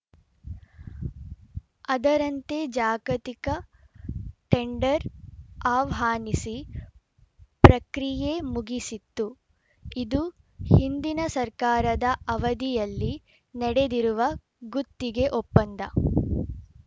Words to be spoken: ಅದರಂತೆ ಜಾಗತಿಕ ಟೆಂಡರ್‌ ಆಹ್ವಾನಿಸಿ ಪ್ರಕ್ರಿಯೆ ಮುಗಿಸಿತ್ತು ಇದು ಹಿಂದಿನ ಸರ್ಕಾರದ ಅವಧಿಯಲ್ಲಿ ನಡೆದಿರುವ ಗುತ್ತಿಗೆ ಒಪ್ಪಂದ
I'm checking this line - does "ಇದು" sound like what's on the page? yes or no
yes